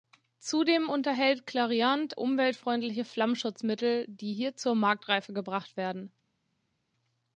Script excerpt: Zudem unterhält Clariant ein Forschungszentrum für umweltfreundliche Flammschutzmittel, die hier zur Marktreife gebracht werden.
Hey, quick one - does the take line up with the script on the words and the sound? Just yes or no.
no